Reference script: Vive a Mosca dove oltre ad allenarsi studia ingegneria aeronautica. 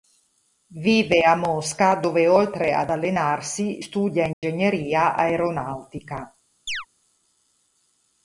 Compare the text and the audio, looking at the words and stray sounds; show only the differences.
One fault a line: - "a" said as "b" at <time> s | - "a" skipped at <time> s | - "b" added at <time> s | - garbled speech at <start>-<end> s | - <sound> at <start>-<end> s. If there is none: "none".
- dropout at 4.3-4.4 s
- chirp at 6.7-6.9 s